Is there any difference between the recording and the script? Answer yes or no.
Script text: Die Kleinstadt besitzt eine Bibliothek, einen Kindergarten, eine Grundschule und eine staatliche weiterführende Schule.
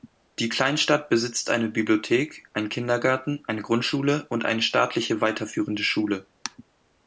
no